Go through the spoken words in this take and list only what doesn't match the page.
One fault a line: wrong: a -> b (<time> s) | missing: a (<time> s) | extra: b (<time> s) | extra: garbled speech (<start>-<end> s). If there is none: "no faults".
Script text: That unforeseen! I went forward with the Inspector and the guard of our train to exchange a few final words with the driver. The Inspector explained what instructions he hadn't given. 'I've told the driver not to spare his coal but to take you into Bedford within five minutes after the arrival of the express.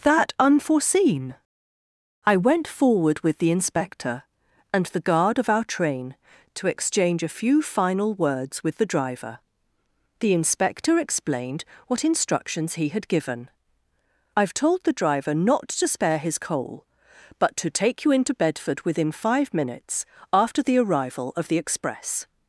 wrong: hadn't -> had (12.9 s)